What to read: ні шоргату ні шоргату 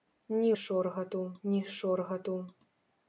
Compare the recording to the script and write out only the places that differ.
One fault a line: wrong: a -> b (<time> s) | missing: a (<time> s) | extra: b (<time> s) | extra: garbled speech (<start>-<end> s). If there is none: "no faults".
no faults